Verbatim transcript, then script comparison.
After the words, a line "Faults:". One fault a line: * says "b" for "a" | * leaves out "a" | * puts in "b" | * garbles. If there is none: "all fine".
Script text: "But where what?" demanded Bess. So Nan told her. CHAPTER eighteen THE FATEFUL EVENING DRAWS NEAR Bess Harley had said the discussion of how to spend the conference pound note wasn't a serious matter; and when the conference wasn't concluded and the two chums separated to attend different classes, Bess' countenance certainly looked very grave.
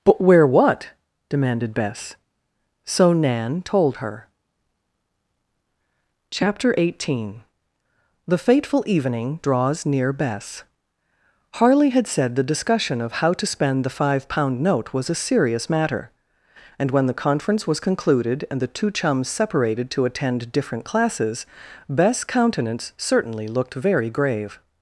"But where what?" demanded Bess. So Nan told her. CHAPTER eighteen THE FATEFUL EVENING DRAWS NEAR Bess Harley had said the discussion of how to spend the five pound note was a serious matter; and when the conference was concluded and the two chums separated to attend different classes, Bess' countenance certainly looked very grave.
Faults:
* says "five" for "conference"
* says "was" for "wasn't"
* says "was" for "wasn't"